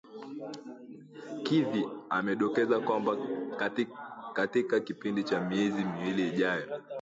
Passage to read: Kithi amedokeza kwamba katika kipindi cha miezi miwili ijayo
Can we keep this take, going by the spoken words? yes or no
yes